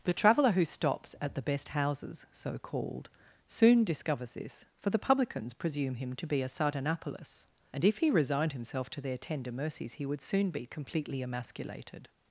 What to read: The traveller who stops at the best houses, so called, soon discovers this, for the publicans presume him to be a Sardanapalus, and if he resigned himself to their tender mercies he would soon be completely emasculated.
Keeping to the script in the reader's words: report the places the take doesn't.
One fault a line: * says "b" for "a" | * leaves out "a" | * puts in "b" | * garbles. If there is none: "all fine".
all fine